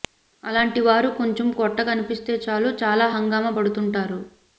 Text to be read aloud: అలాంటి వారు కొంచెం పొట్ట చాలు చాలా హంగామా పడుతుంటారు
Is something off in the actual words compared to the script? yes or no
yes